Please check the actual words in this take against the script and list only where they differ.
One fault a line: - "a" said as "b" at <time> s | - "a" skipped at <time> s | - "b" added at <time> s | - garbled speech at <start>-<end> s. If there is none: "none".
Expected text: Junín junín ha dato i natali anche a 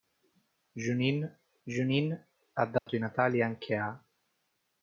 none